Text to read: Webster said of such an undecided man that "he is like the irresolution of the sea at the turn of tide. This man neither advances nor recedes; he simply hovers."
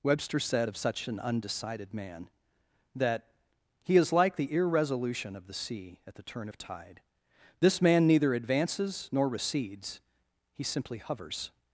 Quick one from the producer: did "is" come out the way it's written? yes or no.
yes